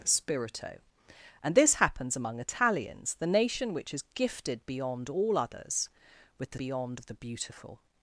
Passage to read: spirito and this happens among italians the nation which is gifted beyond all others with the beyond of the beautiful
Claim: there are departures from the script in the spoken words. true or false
false